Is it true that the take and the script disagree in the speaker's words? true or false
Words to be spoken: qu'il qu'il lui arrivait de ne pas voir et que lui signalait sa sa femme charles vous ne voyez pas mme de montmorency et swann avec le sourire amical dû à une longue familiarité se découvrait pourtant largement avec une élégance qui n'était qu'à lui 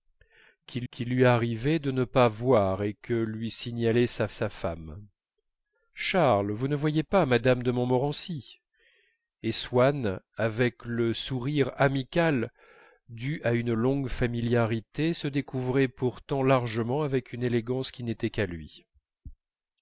false